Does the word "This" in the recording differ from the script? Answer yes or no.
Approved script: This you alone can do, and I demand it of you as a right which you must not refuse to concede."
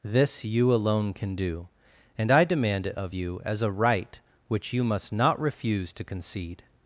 no